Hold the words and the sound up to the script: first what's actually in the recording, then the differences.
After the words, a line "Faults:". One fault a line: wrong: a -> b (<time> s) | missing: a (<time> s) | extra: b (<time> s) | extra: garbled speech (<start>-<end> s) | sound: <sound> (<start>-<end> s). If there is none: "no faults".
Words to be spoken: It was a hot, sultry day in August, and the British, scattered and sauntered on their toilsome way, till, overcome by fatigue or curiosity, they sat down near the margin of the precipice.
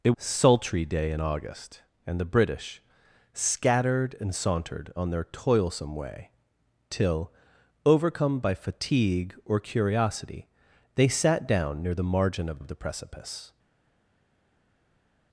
It sultry day in August, and the British, scattered and sauntered on their toilsome way, till, overcome by fatigue or curiosity, they sat down near the margin of of the precipice.
Faults:
missing: was a hot (0.1 s)
extra: of (12.6 s)